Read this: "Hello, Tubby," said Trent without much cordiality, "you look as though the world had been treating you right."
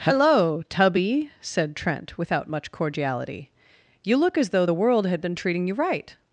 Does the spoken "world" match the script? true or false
true